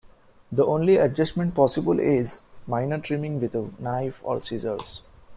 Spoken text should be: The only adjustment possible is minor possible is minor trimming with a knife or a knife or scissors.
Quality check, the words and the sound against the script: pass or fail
fail